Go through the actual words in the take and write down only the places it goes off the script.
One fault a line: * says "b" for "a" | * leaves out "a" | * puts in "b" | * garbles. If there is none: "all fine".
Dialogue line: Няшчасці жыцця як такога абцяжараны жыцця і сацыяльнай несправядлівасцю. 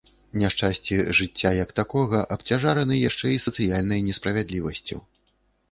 * says "яшчэ" for "жыцця"